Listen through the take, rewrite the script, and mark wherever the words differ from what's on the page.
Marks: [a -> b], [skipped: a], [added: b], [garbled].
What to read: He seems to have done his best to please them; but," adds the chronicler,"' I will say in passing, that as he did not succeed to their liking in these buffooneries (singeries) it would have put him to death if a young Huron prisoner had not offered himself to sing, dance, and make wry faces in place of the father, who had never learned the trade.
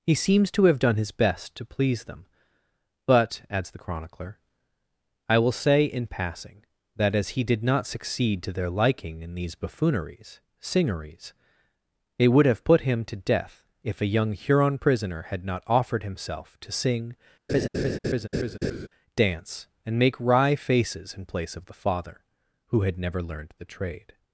He seems to have done his best to please them; but," adds the chronicler,"' I will say in passing, that as he did not succeed to their liking in these buffooneries (singeries) it would have put him to death if a young Huron prisoner had not offered himself to sing, dance, and make wry faces in place of the father, who had never learned the trade.